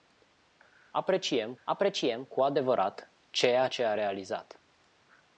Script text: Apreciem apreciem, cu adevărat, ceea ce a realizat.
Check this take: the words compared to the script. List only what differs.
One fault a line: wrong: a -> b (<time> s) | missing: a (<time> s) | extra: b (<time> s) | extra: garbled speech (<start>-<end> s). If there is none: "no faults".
no faults